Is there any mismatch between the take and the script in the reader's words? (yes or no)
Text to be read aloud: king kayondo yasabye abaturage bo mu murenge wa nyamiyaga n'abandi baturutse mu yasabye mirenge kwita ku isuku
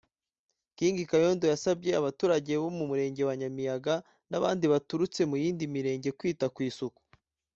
yes